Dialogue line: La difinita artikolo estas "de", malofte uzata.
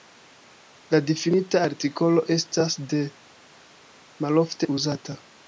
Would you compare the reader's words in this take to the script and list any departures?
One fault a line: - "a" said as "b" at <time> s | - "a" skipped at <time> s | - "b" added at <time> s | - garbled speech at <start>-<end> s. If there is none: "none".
none